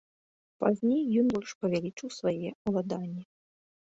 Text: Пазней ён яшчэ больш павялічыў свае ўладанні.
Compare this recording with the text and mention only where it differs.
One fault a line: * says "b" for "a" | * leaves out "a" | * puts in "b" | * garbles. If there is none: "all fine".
* leaves out "яшчэ"